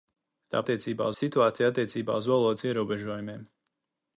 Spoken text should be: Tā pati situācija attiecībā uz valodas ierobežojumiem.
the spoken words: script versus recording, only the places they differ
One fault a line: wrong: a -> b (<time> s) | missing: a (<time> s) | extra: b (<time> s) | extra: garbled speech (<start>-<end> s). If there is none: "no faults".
wrong: pati -> attiecībā (0.6 s)